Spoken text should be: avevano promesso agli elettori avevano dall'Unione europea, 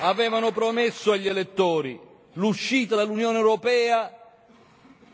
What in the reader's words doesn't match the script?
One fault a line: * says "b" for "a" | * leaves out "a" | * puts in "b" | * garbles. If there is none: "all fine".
* says "l'uscita" for "avevano"